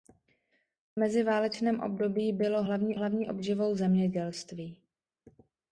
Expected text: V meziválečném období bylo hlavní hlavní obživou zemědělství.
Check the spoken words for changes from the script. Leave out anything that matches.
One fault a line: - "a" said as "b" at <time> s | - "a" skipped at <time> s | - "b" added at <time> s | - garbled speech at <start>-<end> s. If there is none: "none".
none